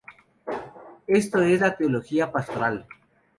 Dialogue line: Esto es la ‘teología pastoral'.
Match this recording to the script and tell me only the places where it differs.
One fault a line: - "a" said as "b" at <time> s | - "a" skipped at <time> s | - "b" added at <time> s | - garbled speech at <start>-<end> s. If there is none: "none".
none